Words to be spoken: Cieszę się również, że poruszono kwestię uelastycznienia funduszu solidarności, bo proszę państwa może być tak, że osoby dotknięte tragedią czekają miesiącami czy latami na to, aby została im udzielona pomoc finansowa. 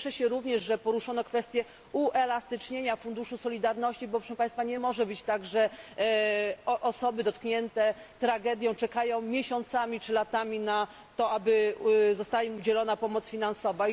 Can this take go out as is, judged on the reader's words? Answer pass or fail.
fail